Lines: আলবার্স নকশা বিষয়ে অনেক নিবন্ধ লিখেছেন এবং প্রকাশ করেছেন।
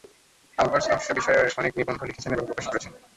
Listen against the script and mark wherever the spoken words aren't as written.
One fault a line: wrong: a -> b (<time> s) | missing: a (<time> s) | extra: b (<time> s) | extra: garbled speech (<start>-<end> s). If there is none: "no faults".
no faults